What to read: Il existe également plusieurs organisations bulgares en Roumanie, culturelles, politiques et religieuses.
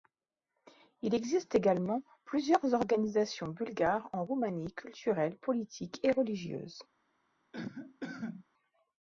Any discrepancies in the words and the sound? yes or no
yes